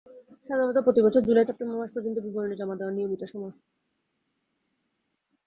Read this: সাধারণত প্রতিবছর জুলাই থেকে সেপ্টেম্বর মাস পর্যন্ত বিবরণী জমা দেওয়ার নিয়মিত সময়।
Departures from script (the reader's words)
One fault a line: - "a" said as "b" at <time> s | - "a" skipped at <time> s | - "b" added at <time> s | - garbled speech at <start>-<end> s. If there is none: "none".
- "থেকে" skipped at 1.5 s